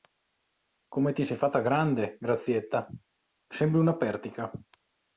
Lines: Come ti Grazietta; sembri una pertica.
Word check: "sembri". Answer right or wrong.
right